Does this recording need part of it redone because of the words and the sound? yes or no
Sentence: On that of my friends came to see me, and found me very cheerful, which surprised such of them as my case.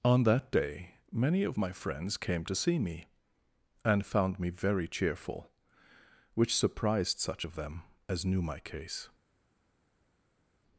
yes